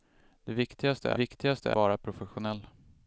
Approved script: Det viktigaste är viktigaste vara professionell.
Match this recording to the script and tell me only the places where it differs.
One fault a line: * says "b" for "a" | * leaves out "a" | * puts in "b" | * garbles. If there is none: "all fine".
all fine